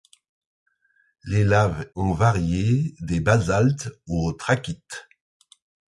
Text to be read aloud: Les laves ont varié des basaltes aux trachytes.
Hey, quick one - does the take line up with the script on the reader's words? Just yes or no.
yes